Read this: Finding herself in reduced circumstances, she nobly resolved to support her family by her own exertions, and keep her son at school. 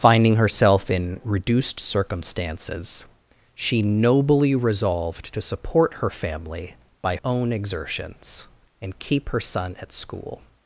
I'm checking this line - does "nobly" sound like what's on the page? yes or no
yes